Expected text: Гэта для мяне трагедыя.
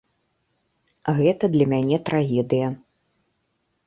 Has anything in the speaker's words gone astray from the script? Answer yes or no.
no